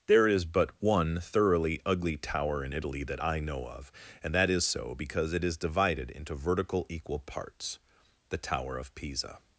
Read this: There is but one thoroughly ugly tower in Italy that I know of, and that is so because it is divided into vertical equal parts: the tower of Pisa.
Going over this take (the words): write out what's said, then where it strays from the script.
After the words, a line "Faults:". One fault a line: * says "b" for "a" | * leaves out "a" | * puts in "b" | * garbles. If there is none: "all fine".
There is but one thoroughly ugly tower in Italy that I know of, and that is so because it is divided into vertical equal parts: the tower of Pisa.
Faults:
all fine